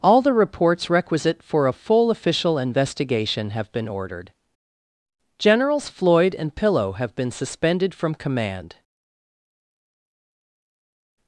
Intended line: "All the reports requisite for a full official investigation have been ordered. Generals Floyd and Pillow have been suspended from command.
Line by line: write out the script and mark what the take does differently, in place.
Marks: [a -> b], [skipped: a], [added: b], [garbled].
"All the reports requisite for a full official investigation have been ordered. Generals Floyd and Pillow have been suspended from command.